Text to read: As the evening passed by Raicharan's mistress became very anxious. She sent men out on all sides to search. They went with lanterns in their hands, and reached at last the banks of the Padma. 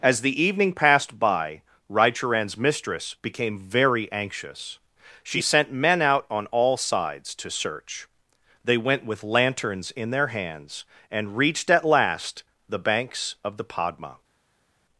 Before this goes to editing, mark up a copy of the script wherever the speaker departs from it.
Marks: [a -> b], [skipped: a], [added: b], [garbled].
As the evening passed by Raicharan's mistress became very anxious. She sent men out on all sides to search. They went with lanterns in their hands, and reached at last the banks of the Padma.